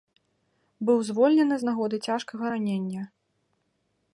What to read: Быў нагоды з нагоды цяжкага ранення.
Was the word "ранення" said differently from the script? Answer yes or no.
no